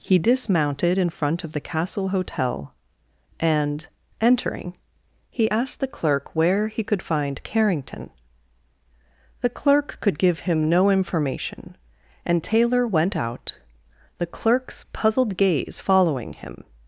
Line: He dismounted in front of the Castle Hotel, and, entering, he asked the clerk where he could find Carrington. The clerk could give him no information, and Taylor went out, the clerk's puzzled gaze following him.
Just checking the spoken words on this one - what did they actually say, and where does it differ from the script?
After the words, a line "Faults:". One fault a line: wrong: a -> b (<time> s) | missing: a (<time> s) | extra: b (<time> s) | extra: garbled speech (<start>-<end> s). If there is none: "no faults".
He dismounted in front of the Castle Hotel, and, entering, he asked the clerk where he could find Carrington. The clerk could give him no information, and Taylor went out, the clerk's puzzled gaze following him.
Faults:
no faults